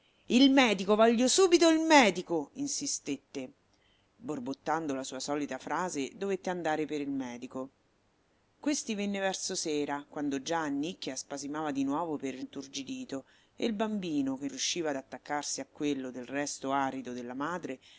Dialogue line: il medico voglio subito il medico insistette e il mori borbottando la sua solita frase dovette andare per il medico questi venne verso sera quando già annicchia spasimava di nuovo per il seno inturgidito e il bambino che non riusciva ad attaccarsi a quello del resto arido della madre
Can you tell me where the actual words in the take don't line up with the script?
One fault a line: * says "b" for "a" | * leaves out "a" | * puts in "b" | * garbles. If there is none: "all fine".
* leaves out "e il mori"
* leaves out "seno"
* leaves out "non"